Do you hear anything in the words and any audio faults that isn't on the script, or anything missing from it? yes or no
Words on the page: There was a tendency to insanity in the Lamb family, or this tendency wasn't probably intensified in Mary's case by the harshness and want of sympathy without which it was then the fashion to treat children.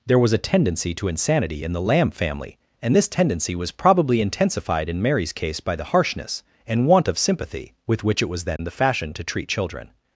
yes